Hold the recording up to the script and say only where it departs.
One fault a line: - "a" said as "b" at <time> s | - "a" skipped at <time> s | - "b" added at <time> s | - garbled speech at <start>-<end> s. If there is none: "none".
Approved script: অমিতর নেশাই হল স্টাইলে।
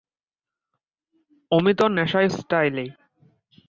- "হল" skipped at 2.3 s